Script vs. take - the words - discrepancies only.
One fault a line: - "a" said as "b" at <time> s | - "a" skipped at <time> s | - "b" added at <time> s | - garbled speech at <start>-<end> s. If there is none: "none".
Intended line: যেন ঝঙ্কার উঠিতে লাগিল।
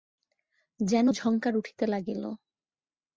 none